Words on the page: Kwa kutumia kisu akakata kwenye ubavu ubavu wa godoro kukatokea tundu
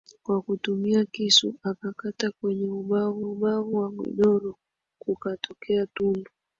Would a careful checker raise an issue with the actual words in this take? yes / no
no